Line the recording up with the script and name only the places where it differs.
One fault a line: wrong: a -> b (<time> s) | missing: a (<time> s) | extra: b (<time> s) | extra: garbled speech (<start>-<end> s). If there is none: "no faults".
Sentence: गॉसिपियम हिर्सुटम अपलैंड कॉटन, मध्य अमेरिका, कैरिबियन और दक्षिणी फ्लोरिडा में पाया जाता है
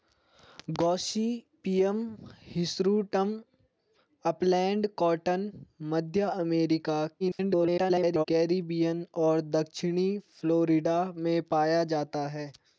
extra: garbled speech (7.2-8.2 s)